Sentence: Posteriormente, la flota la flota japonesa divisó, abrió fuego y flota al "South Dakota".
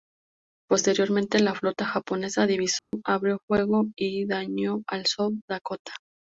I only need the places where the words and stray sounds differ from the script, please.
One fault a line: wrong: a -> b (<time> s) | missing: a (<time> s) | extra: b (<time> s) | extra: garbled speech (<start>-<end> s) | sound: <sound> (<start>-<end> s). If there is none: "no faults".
missing: la flota (1.9 s)
sound: dropout (2.8-2.9 s)
wrong: flota -> dañó (4.2 s)